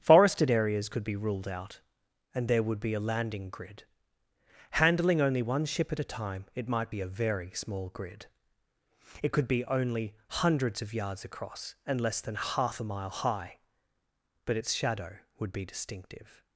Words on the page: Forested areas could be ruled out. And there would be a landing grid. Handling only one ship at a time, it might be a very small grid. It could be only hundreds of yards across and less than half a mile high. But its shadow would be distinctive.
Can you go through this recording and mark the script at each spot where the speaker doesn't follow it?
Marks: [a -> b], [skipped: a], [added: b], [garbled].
Forested areas could be ruled out. And there would be a landing grid. Handling only one ship at a time, it might be a very small grid. It could be only hundreds of yards across and less than half a mile high. But its shadow would be distinctive.